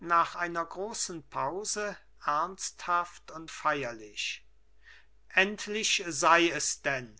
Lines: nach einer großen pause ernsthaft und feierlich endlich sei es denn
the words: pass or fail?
pass